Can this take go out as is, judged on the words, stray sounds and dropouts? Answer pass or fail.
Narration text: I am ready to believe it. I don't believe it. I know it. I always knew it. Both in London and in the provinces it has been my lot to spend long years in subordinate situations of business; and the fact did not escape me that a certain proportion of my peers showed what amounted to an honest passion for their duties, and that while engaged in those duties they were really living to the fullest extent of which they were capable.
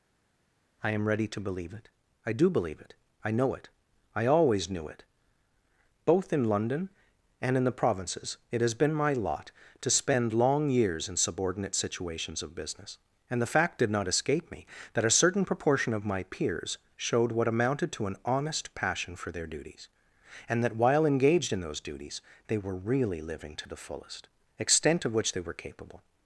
fail